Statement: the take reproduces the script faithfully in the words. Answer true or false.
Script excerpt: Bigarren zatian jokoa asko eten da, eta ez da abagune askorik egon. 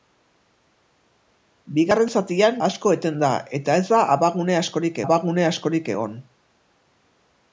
false